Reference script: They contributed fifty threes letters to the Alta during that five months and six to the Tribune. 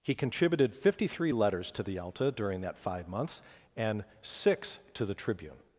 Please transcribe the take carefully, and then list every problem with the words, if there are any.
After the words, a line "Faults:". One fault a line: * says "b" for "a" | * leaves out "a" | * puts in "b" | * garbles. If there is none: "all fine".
He contributed fifty three letters to the Alta during that five months and six to the Tribune.
Faults:
* says "He" for "They"
* says "three" for "threes"